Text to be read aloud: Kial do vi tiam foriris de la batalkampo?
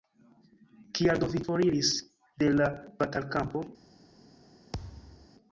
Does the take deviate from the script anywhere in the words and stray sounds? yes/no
yes